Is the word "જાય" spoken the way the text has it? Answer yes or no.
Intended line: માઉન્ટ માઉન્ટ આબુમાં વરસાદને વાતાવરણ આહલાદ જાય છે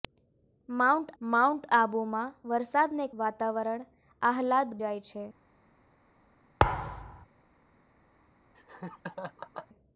yes